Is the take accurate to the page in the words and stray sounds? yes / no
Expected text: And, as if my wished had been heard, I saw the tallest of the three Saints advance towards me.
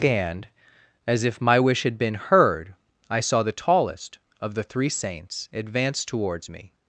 no